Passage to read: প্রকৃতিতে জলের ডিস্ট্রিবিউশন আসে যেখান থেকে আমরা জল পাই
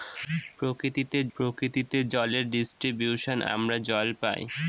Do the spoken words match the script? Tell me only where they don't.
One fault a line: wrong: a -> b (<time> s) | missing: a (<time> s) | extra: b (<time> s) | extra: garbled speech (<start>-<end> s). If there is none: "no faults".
extra: প্রকৃতিতে (1.3 s)
missing: আসে যেখান থেকে (3.4 s)